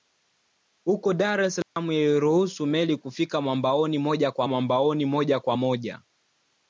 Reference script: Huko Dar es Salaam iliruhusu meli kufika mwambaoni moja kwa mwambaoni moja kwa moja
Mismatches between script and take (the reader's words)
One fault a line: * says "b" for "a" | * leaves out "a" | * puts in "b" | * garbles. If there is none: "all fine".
all fine